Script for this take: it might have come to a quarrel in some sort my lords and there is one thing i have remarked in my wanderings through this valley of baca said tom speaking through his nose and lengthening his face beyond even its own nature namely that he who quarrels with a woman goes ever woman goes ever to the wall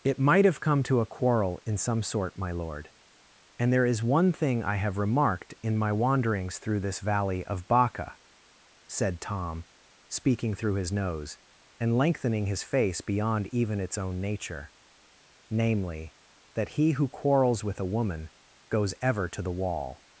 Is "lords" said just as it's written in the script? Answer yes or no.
no